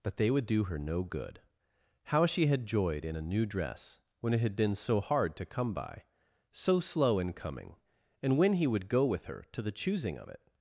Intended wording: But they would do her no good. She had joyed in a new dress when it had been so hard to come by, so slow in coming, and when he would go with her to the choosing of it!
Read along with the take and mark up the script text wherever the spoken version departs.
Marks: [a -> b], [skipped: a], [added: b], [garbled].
But they would do her no good. [added: How] She had joyed in a new dress when it had been so hard to come by, so slow in coming, and when he would go with her to the choosing of it!